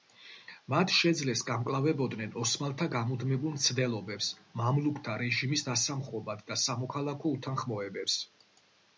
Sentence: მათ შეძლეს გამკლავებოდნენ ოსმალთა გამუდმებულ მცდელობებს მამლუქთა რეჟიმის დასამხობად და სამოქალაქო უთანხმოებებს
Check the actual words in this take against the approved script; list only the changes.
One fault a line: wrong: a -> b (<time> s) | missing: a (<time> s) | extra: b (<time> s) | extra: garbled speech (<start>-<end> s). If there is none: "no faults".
no faults